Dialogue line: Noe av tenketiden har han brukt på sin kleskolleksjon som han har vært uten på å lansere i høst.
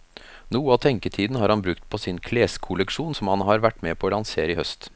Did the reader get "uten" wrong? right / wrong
wrong